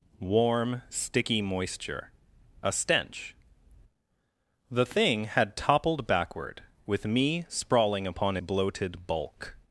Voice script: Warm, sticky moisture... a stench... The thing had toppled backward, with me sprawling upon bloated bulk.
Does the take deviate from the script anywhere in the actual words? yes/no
no